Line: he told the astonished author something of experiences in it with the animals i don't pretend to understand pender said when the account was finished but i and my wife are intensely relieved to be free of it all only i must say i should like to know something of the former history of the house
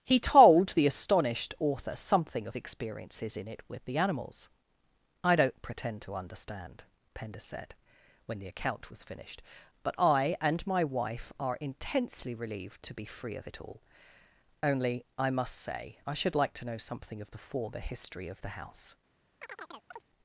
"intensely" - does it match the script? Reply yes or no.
yes